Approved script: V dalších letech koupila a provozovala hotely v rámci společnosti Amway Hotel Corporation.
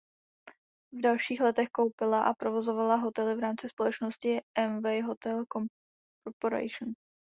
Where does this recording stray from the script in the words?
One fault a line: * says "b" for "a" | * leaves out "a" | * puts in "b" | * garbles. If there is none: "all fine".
all fine